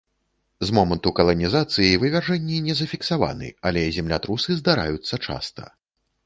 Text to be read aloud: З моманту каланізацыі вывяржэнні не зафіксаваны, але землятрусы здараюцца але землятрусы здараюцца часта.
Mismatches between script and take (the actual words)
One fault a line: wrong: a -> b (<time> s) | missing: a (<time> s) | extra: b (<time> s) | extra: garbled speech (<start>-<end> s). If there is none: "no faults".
missing: але землятрусы здараюцца (5.1 s)